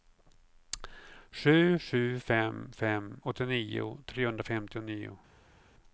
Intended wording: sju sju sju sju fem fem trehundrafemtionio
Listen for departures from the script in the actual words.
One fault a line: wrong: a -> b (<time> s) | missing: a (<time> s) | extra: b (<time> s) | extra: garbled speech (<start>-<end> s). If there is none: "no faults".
wrong: sju sju -> fem (2.2 s)
wrong: fem -> åttionio (3.2 s)